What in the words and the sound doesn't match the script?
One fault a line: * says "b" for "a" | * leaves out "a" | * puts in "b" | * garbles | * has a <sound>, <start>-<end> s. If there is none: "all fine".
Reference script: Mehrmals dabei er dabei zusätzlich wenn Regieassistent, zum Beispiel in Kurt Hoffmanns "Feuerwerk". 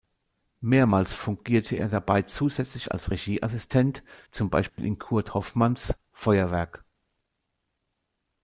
* says "fungierte" for "dabei"
* says "als" for "wenn"
* has a dropout, 4.7-4.8 s